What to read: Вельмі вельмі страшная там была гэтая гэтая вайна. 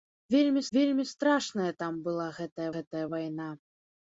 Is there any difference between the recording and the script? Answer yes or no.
no